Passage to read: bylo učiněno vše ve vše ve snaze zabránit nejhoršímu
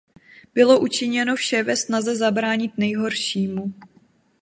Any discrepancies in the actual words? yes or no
yes